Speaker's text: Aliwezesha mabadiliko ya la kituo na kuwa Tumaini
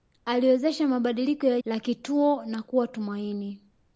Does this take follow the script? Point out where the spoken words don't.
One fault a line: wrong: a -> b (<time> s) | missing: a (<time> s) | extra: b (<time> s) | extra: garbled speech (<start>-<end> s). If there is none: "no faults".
no faults